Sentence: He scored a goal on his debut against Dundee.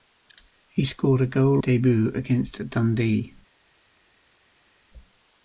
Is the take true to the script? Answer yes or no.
no